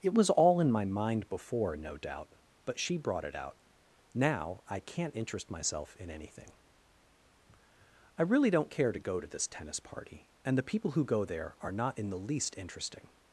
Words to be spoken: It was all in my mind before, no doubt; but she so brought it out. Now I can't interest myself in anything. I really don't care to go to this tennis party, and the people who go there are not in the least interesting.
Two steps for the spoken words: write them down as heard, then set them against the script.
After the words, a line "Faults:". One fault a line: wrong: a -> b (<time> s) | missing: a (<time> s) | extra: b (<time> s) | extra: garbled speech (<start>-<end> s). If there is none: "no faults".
It was all in my mind before, no doubt; but she brought it out. Now I can't interest myself in anything. I really don't care to go to this tennis party, and the people who go there are not in the least interesting.
Faults:
missing: so (3.0 s)